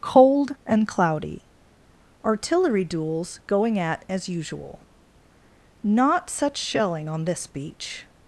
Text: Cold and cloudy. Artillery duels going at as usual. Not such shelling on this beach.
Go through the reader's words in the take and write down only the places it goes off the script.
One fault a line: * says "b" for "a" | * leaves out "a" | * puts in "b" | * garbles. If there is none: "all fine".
all fine